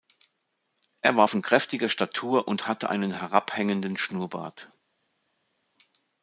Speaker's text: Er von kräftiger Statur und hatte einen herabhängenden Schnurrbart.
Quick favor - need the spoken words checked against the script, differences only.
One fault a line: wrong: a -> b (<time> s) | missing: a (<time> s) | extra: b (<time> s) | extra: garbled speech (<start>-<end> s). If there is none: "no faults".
extra: war (1.1 s)